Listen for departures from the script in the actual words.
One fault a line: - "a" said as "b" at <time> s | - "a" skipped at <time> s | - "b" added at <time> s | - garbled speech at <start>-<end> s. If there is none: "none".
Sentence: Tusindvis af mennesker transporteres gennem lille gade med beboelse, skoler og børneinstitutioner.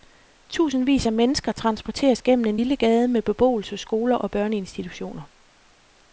- "en" added at 2.5 s